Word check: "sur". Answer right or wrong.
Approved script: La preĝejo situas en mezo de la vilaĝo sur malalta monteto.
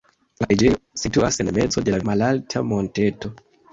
wrong